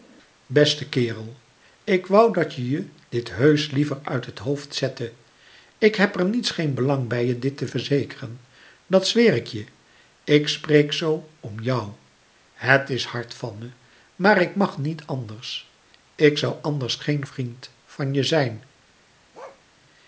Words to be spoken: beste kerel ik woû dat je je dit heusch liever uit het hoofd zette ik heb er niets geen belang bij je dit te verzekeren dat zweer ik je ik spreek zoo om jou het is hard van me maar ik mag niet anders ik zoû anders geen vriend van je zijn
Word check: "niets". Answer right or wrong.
right